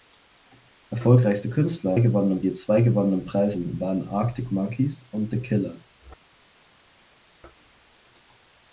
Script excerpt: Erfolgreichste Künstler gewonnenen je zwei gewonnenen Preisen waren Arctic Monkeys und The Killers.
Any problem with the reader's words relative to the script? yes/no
no